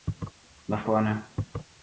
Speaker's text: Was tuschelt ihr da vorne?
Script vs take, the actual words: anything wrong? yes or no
yes